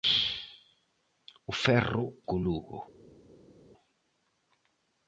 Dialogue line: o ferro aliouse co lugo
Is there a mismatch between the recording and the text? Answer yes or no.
yes